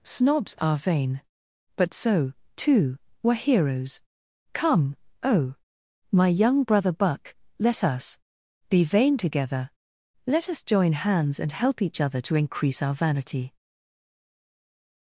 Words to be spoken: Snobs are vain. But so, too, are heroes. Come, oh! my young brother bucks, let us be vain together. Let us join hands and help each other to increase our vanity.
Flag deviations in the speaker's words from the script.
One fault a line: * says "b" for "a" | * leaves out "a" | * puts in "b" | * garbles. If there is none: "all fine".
* says "were" for "are"
* says "buck" for "bucks"